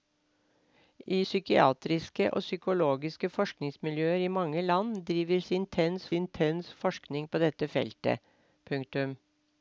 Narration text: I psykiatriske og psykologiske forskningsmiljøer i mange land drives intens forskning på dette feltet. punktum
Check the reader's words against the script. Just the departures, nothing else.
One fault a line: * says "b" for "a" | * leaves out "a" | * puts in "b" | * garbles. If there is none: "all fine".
* puts in "intens"